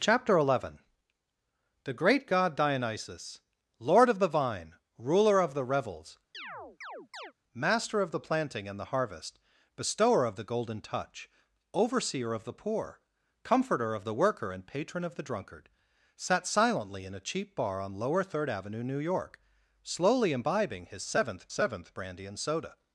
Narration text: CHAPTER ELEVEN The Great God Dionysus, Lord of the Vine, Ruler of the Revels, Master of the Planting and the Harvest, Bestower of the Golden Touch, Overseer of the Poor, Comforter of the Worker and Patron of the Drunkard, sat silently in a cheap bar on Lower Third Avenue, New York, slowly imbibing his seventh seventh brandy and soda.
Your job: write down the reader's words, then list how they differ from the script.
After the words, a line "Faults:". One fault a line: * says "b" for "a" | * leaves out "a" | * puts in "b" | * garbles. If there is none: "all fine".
CHAPTER ELEVEN The Great God Dionysus, Lord of the Vine, Ruler of the Revels, Master of the Planting and the Harvest, Bestower of the Golden Touch, Overseer of the Poor, Comforter of the Worker and Patron of the Drunkard, sat silently in a cheap bar on Lower Third Avenue, New York, slowly imbibing his seventh seventh brandy and soda.
Faults:
all fine